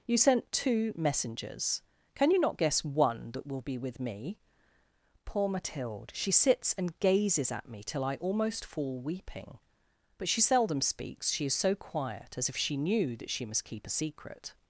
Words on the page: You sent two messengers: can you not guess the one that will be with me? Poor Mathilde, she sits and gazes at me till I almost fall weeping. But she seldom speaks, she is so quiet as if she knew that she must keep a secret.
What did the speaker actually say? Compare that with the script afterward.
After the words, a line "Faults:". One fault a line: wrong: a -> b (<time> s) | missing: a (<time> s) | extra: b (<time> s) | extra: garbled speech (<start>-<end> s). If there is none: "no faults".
You sent two messengers: can you not guess one that will be with me? Poor Mathilde, she sits and gazes at me till I almost fall weeping. But she seldom speaks, she is so quiet as if she knew that she must keep a secret.
Faults:
missing: the (2.8 s)